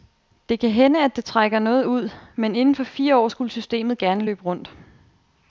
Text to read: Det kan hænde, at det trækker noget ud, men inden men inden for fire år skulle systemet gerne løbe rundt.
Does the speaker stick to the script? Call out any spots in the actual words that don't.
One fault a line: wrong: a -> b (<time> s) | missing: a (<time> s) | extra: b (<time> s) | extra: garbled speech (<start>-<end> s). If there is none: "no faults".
missing: men inden (2.8 s)